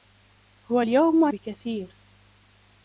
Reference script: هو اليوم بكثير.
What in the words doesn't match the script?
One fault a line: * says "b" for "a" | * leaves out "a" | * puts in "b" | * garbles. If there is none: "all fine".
all fine